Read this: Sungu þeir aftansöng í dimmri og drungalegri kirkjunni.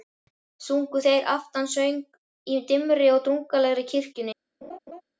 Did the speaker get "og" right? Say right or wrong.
right